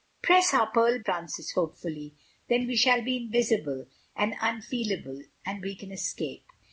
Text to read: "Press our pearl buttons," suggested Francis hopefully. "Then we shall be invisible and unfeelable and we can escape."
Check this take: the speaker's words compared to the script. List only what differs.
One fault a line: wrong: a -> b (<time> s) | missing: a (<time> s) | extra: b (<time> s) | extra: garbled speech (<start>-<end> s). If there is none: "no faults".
missing: buttons suggested (1.0 s)